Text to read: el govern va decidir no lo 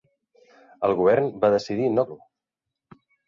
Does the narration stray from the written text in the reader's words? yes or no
no